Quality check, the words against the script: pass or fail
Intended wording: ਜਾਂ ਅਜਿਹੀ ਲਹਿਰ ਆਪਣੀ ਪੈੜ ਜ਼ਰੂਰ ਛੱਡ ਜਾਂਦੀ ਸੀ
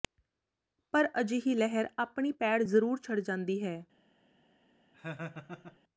fail